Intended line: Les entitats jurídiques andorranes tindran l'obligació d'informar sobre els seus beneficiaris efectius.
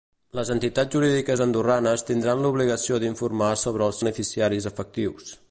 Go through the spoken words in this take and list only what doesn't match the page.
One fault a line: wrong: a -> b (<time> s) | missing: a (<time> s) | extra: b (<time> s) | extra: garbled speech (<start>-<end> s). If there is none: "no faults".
missing: seus (4.0 s)